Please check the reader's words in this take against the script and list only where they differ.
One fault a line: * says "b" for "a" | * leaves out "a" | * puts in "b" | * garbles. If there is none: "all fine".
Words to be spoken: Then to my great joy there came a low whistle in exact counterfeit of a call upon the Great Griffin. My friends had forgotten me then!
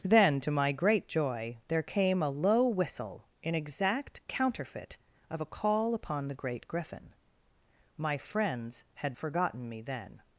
all fine